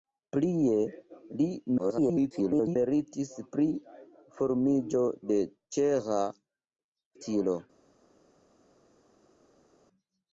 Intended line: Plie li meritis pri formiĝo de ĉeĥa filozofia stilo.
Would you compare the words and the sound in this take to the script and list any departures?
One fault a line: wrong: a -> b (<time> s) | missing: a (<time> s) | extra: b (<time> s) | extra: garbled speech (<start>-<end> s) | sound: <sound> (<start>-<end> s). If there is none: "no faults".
extra: garbled speech (1.8-2.8 s)
missing: filozofia (6.2 s)